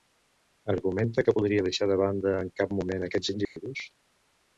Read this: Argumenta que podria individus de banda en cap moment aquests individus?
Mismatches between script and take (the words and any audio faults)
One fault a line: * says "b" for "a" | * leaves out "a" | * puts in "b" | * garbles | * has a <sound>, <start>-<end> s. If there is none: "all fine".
* says "deixar" for "individus"
* has a dropout, 3.4-3.6 s